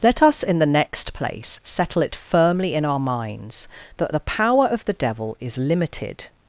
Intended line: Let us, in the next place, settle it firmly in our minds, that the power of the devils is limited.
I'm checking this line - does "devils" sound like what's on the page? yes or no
no